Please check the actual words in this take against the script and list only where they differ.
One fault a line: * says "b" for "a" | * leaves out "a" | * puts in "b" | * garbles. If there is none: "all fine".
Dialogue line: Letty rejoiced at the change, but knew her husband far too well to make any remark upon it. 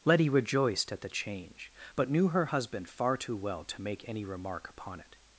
all fine